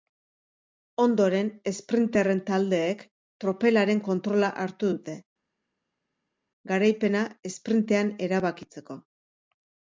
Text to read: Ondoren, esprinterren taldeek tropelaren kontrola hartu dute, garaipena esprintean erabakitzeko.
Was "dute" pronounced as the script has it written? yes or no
yes